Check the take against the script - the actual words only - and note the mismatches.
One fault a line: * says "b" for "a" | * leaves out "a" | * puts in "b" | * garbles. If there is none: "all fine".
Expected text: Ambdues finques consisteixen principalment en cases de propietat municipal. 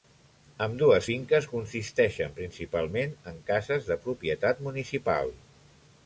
all fine